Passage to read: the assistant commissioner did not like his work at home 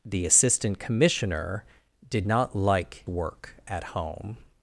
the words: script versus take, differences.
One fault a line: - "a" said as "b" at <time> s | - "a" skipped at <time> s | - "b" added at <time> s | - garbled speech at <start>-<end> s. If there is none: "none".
- "his" skipped at 3.1 s